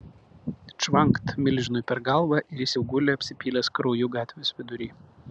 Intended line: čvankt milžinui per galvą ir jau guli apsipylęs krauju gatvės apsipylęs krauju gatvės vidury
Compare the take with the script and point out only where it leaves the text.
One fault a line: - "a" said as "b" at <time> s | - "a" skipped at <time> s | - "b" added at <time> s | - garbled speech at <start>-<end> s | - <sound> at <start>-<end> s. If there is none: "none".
- "jis" added at 2.6 s
- "apsipylęs krauju gatvės" skipped at 4.5 s